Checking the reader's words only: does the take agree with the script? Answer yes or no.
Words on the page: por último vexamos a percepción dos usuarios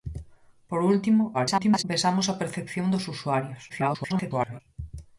no